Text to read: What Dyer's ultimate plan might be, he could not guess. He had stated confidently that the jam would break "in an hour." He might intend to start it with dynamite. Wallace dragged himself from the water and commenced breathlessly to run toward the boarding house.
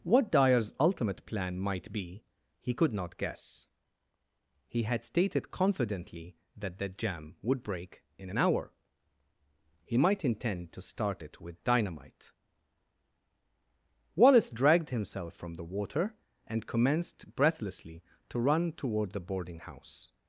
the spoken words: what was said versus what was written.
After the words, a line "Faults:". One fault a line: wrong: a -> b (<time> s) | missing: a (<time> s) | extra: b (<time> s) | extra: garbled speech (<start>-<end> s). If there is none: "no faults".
What Dyer's ultimate plan might be, he could not guess. He had stated confidently that the jam would break "in an hour." He might intend to start it with dynamite. Wallace dragged himself from the water and commenced breathlessly to run toward the boarding house.
Faults:
no faults